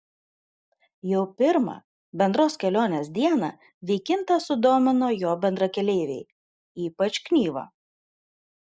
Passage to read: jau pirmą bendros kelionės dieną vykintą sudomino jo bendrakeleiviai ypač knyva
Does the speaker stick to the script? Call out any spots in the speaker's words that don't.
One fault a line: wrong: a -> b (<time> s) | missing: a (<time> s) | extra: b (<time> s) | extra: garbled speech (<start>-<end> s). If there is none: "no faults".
no faults